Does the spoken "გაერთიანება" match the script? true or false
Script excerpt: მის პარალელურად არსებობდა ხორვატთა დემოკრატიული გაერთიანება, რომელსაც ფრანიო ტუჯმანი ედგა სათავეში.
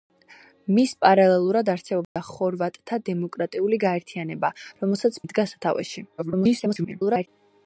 true